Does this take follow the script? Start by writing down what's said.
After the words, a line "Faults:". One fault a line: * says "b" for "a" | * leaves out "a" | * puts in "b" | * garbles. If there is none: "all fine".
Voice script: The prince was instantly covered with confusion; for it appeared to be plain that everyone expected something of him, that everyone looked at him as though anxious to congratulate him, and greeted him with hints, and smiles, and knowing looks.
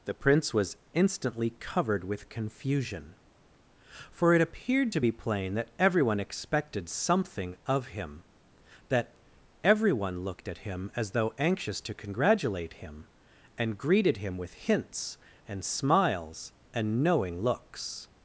The prince was instantly covered with confusion; for it appeared to be plain that everyone expected something of him, that everyone looked at him as though anxious to congratulate him, and greeted him with hints, and smiles, and knowing looks.
Faults:
all fine